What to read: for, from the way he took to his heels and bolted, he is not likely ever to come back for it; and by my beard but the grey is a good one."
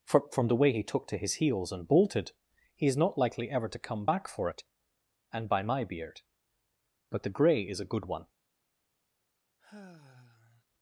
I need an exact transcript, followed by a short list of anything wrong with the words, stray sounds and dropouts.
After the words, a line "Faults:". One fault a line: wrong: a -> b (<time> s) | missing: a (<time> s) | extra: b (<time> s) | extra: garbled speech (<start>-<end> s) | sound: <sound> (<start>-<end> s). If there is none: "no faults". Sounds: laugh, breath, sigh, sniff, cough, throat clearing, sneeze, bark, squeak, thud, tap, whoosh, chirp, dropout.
for, from the way he took to his heels and bolted, he is not likely ever to come back for it; and by my beard but the grey is a good one."
Faults:
sound: sigh (9.6-10.6 s)